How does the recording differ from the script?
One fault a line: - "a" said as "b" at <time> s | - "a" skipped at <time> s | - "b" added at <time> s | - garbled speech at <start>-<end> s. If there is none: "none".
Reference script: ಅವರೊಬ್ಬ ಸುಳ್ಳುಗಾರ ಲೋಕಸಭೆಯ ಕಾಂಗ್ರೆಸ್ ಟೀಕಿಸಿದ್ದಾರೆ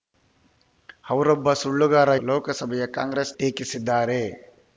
none